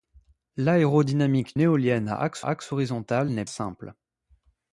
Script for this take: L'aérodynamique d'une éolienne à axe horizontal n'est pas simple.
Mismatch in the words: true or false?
true